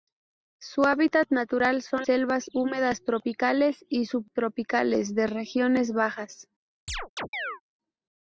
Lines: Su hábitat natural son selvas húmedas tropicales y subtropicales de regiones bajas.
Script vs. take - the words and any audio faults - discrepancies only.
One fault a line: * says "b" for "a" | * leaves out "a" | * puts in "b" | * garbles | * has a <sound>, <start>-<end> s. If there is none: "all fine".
* has a chirp, 6.9-7.6 s